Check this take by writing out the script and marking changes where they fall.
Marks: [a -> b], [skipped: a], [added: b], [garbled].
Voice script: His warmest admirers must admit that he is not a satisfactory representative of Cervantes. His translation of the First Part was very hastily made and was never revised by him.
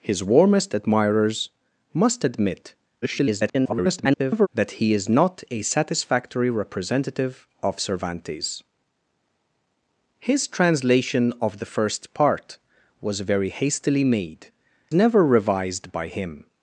His warmest admirers must admit [garbled] that he is not a satisfactory representative of Cervantes. His translation of the First Part was very hastily made [skipped: and was] never revised by him.